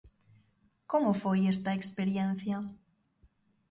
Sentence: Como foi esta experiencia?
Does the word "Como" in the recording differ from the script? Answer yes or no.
no